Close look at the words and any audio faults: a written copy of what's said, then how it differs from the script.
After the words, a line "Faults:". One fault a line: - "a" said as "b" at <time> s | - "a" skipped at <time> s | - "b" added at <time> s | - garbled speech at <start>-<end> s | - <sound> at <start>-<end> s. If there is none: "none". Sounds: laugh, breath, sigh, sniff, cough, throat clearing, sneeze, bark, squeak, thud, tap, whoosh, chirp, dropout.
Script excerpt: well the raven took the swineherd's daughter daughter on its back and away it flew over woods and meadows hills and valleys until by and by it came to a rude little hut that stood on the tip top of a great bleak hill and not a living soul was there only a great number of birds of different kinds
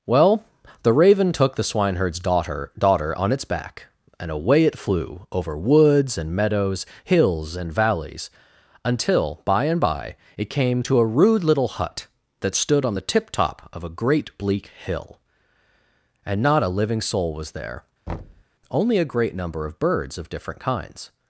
well the raven took the swineherd's daughter daughter on its back and away it flew over woods and meadows hills and valleys until by and by it came to a rude little hut that stood on the tip top of a great bleak hill and not a living soul was there only a great number of birds of different kinds
Faults:
- thud at 18.1-18.4 s